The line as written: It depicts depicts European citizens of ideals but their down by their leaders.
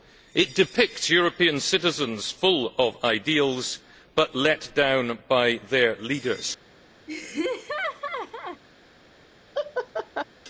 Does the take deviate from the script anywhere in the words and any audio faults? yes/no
yes